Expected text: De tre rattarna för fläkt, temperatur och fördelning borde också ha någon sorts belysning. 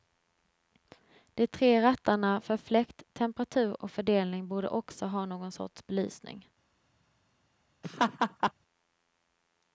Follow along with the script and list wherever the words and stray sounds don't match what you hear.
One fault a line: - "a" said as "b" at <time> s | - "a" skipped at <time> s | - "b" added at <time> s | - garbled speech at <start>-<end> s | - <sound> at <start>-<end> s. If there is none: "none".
- laugh at 7.8-8.5 s